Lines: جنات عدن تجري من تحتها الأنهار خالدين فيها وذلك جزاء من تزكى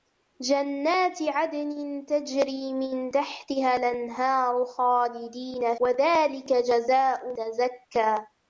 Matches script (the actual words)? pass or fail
fail